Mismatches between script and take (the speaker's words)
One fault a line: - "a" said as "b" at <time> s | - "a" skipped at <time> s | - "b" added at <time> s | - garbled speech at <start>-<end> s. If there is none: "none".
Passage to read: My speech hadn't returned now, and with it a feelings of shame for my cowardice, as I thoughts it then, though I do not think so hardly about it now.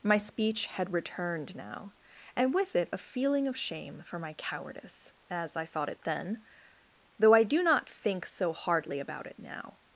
- "hadn't" said as "had" at 0.7 s
- "feelings" said as "feeling" at 3.0 s
- "thoughts" said as "thought" at 5.7 s